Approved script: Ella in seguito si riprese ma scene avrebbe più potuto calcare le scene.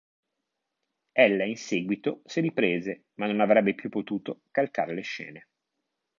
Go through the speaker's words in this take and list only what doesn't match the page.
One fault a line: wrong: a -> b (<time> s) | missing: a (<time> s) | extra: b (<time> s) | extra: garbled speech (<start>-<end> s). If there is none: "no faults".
wrong: scene -> non (3.3 s)